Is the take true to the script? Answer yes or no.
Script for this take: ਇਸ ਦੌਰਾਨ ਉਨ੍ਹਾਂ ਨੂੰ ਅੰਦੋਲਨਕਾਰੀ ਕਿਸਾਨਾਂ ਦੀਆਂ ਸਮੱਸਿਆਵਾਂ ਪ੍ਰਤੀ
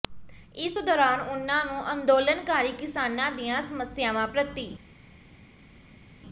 yes